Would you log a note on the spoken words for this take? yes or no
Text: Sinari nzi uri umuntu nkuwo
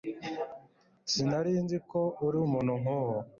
yes